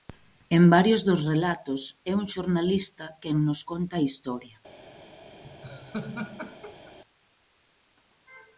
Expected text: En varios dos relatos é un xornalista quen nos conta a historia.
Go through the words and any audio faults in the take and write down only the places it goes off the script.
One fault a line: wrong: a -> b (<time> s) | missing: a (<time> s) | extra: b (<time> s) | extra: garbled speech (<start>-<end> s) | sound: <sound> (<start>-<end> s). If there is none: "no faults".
sound: laugh (5.4-7.0 s)